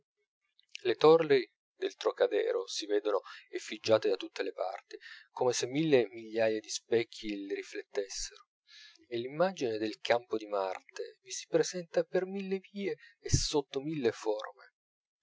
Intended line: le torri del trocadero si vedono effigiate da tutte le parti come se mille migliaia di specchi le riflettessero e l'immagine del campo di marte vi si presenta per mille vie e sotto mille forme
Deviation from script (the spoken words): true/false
false